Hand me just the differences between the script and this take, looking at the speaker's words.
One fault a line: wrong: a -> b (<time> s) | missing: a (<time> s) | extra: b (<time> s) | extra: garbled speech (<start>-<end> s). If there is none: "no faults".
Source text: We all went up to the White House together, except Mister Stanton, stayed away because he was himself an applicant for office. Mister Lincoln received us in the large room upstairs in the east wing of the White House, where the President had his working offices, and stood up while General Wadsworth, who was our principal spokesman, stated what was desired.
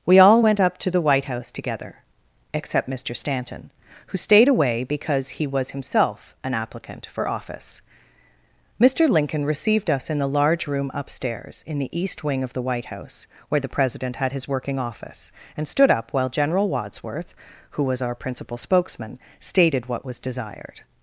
extra: who (4.1 s)
wrong: offices -> office (14.8 s)